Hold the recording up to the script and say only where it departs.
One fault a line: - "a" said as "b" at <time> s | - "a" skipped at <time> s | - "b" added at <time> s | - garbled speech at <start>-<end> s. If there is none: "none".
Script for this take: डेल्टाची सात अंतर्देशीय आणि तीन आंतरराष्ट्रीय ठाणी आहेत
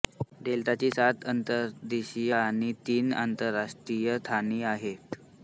none